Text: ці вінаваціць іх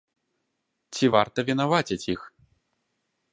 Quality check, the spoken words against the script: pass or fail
fail